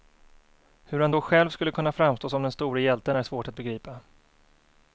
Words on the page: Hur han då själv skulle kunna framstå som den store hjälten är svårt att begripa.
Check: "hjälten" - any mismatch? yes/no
no